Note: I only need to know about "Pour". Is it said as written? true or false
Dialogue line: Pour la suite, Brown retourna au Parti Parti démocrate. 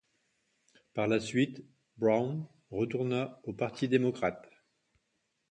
false